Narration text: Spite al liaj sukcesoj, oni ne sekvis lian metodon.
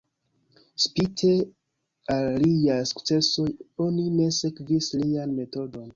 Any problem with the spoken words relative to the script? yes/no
no